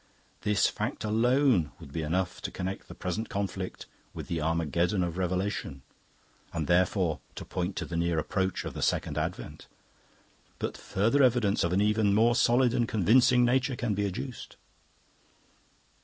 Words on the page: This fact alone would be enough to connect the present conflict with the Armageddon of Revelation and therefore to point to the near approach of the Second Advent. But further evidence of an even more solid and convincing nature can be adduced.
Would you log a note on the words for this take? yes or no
no